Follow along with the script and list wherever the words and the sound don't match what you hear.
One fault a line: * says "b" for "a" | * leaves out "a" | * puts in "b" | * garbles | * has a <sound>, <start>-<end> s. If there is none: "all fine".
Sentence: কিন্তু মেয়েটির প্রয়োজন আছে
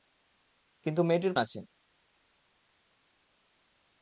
* leaves out "প্রয়োজন"